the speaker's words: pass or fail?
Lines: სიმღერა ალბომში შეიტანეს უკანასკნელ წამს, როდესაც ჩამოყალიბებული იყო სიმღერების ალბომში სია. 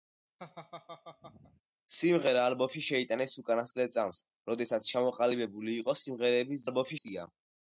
pass